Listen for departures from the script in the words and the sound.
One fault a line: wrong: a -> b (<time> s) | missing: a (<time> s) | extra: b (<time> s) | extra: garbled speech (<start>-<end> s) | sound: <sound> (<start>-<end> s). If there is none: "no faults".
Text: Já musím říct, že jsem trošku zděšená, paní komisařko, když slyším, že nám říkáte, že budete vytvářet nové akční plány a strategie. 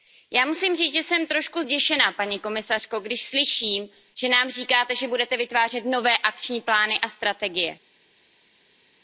no faults